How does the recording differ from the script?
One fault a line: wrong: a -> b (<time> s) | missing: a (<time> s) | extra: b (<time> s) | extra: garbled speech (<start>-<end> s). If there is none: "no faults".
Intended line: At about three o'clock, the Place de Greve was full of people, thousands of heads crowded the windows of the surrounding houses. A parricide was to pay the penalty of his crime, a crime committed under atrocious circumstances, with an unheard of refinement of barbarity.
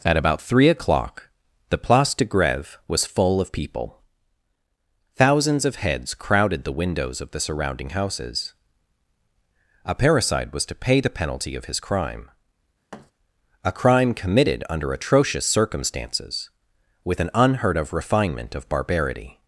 no faults